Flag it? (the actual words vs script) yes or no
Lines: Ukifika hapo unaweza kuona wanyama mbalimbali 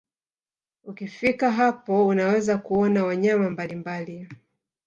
no